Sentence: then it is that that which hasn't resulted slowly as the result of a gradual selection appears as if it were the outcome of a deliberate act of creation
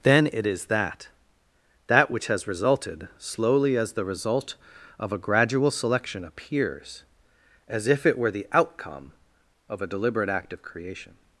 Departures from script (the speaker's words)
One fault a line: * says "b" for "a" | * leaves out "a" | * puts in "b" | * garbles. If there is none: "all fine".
* says "has" for "hasn't"